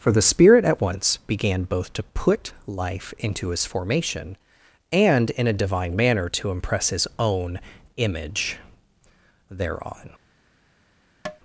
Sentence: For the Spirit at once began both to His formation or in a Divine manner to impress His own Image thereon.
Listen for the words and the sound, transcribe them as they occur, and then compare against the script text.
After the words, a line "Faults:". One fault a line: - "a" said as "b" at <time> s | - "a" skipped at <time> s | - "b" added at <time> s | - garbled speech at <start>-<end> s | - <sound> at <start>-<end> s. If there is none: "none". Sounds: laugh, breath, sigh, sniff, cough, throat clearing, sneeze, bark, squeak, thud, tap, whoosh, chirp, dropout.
For the Spirit at once began both to put life into His formation and in a Divine manner to impress His own Image thereon.
Faults:
- "put life into" added at 2.0 s
- "or" said as "and" at 4.9 s
- tap at 11.3-11.4 s